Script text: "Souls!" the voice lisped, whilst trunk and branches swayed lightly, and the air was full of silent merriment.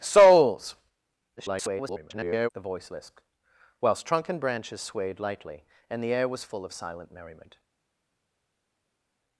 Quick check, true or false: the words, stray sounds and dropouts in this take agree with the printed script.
false